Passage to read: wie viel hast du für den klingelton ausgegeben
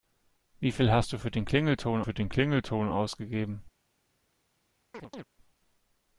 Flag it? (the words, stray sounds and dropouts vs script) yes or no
yes